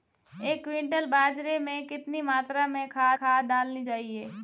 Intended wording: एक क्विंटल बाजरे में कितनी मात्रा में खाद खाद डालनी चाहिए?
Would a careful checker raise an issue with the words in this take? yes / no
no